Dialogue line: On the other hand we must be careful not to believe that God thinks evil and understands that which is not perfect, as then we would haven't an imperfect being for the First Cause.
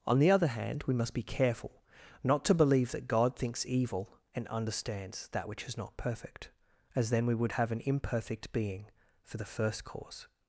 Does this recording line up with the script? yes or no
no